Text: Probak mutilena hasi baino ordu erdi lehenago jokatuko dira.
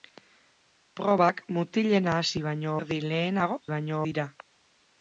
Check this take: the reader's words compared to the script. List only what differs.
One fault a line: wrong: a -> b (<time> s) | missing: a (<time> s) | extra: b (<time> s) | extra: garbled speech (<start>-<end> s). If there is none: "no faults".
missing: ordu (2.7 s)
wrong: jokatuko -> baino (3.7 s)